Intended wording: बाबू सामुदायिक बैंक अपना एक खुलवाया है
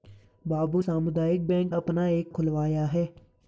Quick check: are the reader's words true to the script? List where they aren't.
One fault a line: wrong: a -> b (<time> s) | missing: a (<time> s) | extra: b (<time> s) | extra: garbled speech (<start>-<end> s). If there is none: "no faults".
no faults